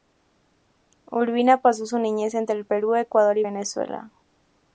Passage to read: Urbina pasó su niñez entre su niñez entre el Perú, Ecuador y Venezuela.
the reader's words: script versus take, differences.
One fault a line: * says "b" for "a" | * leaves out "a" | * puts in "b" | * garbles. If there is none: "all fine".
* leaves out "su niñez entre"